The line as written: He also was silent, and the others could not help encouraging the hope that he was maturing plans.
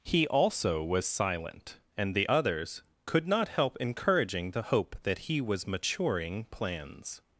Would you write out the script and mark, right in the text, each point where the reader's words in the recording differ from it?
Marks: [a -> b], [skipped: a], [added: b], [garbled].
He also was silent, and the others could not help encouraging the hope that he was maturing plans.